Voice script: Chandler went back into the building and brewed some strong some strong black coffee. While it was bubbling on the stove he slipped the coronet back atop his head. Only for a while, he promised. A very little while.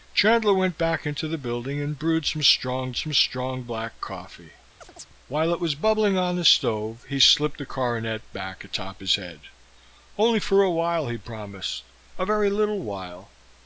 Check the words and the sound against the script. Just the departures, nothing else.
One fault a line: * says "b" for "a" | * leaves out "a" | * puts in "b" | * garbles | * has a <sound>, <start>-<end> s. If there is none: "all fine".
* has a chirp, 4.8-5.1 s